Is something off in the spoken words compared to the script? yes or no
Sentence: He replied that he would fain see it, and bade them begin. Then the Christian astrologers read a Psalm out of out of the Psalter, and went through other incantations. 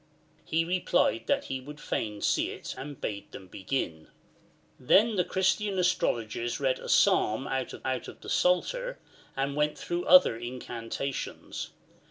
no